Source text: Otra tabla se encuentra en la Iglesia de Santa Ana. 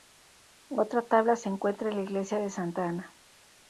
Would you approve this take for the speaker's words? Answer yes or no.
yes